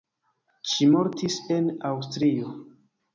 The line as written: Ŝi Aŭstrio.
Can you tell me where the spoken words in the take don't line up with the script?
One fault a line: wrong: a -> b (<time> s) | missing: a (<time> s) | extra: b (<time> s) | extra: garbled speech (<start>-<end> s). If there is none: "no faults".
extra: mortis en (0.9 s)